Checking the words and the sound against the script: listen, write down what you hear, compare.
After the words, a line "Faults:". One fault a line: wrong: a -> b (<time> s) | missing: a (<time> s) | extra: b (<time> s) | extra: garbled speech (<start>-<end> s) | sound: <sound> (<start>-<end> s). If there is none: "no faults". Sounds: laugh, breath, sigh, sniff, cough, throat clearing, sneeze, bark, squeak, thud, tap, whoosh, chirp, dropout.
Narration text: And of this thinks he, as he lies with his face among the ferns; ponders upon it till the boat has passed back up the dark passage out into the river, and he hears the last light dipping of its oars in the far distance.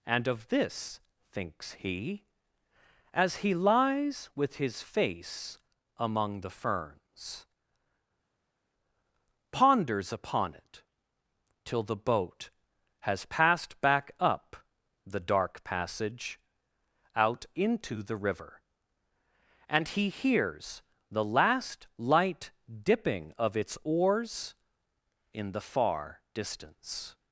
And of this thinks he, as he lies with his face among the ferns; ponders upon it till the boat has passed back up the dark passage out into the river, and he hears the last light dipping of its oars in the far distance.
Faults:
no faults